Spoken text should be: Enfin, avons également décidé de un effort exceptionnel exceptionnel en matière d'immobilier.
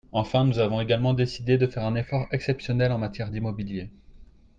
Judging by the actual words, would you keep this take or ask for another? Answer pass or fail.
fail